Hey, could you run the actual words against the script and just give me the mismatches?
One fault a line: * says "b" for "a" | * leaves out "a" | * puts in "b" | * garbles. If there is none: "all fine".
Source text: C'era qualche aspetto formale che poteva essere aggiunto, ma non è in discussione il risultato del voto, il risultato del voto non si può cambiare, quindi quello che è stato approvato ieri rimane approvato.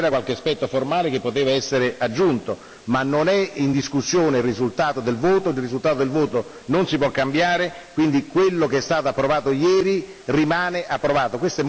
all fine